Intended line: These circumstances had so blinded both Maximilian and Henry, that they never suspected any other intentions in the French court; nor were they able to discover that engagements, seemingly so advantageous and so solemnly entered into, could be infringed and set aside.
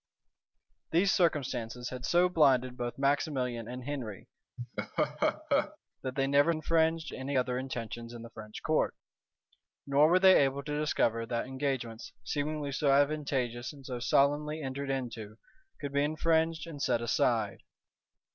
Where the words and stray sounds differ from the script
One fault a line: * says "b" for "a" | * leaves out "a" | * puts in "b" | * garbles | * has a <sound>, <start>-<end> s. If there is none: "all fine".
* has a laugh, 4.6-5.8 s
* says "infringed" for "suspected"